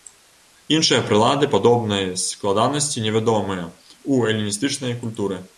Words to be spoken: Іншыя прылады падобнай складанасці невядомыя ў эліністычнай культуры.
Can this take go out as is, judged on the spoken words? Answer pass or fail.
pass